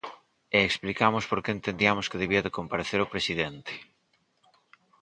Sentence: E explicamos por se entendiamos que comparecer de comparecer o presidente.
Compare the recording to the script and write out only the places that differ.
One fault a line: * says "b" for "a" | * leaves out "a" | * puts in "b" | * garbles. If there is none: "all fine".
* says "que" for "se"
* says "debía" for "comparecer"